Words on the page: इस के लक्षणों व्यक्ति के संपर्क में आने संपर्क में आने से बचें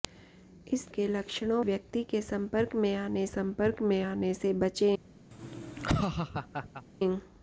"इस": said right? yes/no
yes